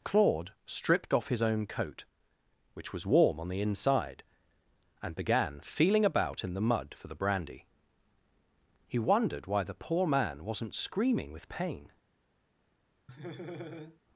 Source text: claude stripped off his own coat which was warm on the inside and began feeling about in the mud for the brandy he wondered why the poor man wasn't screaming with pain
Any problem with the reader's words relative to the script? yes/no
no